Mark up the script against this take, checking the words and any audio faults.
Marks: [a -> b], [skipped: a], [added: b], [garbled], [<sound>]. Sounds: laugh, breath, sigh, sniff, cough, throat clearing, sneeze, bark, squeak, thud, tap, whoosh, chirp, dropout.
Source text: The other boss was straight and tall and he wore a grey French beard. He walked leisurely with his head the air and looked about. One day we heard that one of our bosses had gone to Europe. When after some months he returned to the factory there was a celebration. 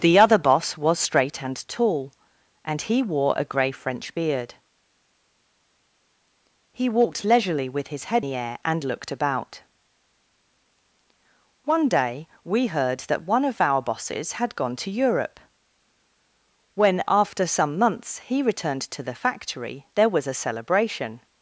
The other boss was straight and tall and he wore a grey French beard. He walked leisurely with his head the air and looked about. One day we heard that one of our bosses had gone to Europe. When after some months he returned to the factory there was a celebration.